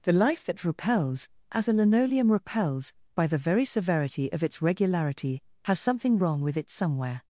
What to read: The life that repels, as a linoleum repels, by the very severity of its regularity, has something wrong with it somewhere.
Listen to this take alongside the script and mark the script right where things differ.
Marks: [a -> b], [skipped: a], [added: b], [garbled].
The life that repels, as a linoleum repels, by the very severity of its regularity, has something wrong with it somewhere.